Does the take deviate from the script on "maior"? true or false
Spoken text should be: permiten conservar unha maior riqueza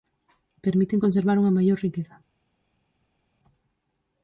false